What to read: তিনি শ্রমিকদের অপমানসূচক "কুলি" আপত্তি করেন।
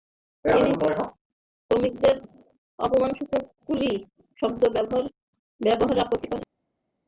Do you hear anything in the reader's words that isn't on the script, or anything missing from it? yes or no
yes